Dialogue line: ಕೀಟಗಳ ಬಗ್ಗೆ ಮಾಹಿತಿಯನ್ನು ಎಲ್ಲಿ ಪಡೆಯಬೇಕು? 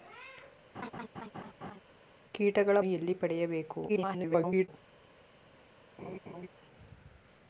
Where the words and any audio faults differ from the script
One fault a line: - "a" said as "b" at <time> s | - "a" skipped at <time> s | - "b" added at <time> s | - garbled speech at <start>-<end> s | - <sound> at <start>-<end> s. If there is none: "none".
- laugh at 0.7-1.8 s
- "ಬಗ್ಗೆ ಮಾಹಿತಿಯನ್ನು" skipped at 2.8 s
- garbled speech at 3.9-4.7 s
- laugh at 6.0-6.5 s